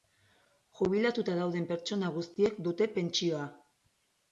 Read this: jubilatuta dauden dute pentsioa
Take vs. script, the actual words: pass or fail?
fail